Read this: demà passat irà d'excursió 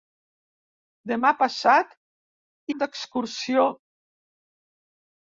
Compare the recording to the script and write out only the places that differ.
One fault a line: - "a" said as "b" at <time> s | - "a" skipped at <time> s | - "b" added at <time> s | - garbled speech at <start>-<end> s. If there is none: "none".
- "irà" skipped at 1.9 s